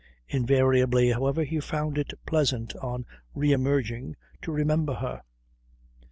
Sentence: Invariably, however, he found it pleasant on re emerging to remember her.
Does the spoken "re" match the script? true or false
true